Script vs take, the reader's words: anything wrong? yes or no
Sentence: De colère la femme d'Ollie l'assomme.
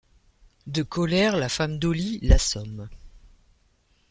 no